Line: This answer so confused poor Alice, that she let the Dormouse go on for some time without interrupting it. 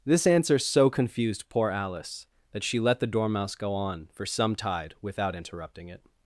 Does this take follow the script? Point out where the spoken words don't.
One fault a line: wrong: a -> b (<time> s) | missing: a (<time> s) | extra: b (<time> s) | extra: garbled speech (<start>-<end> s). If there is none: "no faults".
wrong: time -> tide (4.5 s)